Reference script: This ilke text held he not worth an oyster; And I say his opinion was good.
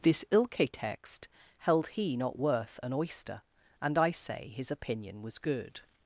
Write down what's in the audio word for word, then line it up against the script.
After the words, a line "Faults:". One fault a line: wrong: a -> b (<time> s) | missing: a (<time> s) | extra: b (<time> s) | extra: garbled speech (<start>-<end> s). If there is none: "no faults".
This ilke text held he not worth an oyster; And I say his opinion was good.
Faults:
no faults